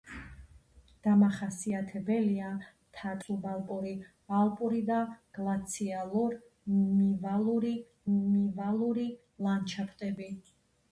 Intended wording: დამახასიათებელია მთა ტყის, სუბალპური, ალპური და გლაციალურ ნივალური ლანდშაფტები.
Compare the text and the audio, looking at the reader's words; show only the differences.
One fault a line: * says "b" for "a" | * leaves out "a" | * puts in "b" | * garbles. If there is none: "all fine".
* leaves out "ტყის"
* puts in "ნივალური"